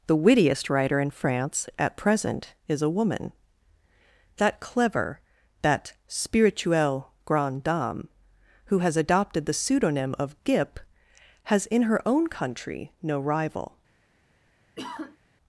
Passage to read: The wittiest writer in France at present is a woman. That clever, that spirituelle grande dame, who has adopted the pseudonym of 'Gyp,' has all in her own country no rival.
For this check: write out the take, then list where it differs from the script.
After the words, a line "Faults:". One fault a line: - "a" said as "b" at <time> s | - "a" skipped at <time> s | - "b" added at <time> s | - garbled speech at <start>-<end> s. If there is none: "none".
The wittiest writer in France at present is a woman. That clever, that spirituelle grande dame, who has adopted the pseudonym of 'Gyp,' has in her own country no rival.
Faults:
- "all" skipped at 11.7 s